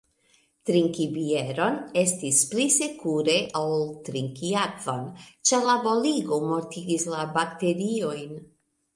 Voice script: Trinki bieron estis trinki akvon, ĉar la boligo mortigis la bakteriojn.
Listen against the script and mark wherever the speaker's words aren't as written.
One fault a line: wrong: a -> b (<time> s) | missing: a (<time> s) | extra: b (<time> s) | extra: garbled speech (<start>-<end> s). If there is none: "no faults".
extra: pli sekure ol (2.5 s)